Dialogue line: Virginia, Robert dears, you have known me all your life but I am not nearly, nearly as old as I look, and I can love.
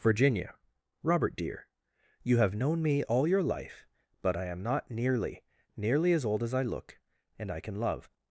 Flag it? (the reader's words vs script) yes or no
yes